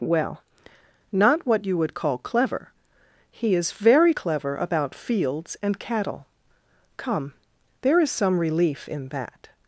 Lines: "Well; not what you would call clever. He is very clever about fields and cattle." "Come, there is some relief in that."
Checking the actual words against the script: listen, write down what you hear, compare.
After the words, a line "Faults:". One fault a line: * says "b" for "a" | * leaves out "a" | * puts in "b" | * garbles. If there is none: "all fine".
"Well; not what you would call clever. He is very clever about fields and cattle." "Come, there is some relief in that."
Faults:
all fine